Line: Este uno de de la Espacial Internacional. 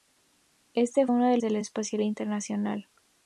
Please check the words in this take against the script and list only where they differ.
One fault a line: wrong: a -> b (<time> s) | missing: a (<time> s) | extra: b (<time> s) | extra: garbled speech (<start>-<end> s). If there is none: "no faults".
no faults